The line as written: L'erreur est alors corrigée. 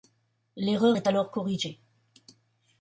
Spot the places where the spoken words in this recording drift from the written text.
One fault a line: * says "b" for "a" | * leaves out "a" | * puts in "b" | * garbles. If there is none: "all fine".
all fine